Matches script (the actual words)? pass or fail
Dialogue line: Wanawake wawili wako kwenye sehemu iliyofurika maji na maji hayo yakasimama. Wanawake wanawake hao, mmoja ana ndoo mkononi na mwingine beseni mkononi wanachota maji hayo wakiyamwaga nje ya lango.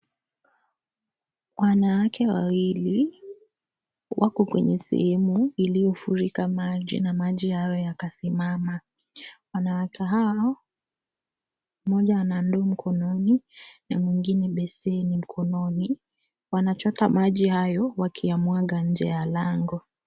fail